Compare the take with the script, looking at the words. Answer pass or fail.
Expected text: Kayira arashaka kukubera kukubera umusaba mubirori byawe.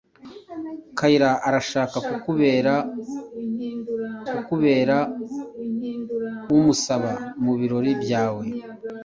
pass